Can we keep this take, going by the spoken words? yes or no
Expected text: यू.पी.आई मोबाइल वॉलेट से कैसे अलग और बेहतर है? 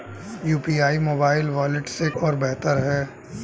no